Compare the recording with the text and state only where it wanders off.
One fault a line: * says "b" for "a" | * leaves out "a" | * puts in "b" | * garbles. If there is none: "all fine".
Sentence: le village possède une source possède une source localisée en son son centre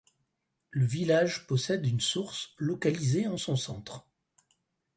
* leaves out "possède une source"
* leaves out "son"